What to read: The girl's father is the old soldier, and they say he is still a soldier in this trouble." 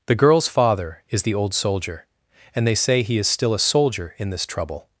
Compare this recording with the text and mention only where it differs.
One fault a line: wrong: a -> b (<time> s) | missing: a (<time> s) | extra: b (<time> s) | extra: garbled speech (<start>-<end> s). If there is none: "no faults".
no faults